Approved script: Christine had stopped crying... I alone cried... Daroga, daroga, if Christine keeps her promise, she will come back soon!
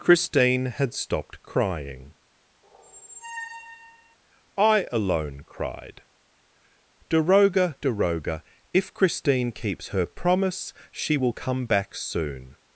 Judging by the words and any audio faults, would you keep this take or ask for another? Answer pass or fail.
fail